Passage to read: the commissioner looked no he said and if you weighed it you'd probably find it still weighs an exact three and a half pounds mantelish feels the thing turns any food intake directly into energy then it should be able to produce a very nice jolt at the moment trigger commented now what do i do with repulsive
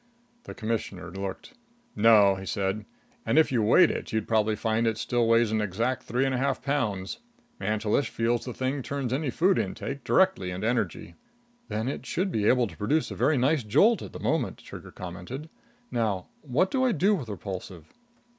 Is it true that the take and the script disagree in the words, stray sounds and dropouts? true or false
false